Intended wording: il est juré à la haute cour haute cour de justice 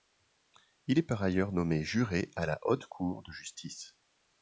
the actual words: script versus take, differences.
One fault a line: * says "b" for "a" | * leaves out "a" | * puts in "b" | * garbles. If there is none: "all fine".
* puts in "par ailleurs nommé"
* leaves out "haute cour"